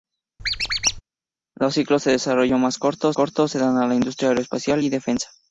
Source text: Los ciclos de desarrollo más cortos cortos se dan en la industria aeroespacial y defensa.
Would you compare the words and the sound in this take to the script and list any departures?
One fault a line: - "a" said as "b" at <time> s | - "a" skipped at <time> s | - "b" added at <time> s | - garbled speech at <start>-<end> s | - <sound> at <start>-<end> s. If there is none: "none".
- squeak at 0.4-1.0 s